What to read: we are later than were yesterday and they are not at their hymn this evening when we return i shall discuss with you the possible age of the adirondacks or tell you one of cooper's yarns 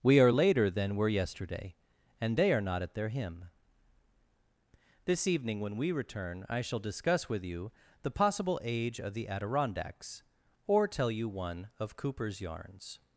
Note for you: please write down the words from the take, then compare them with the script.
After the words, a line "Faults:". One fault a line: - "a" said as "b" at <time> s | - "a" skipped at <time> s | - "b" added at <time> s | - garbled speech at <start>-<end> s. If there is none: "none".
we are later than were yesterday and they are not at their hymn this evening when we return i shall discuss with you the possible age of the adirondacks or tell you one of cooper's yarns
Faults:
none